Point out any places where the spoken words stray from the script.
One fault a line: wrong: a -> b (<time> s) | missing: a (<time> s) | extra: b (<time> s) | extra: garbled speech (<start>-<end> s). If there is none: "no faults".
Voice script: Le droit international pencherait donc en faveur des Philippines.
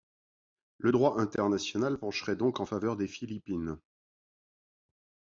no faults